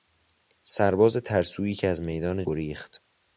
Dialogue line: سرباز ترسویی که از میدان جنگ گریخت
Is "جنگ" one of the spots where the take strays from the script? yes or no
yes